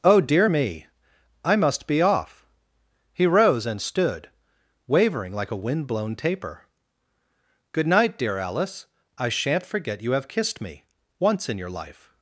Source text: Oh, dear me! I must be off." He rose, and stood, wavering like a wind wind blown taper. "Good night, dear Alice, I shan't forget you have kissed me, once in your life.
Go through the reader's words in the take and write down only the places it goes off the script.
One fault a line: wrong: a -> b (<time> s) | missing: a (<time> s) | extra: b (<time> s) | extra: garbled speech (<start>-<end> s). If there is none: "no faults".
missing: wind (5.9 s)